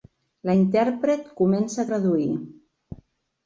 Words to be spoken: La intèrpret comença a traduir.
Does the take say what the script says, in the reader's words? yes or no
yes